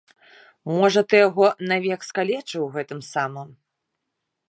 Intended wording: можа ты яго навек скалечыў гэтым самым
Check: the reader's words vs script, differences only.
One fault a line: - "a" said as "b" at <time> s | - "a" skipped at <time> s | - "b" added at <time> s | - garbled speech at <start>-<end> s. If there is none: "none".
none